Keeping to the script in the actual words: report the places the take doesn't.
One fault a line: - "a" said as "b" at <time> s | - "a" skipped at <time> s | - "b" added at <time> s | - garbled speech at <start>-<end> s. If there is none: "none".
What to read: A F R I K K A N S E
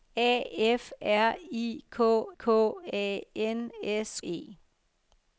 none